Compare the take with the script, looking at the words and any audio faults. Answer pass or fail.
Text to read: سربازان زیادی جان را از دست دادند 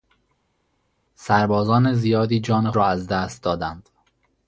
pass